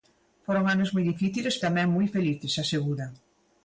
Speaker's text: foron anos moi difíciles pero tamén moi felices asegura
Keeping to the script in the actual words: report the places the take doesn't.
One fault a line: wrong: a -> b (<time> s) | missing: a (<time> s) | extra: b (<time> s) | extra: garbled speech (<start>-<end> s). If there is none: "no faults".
missing: pero (1.6 s)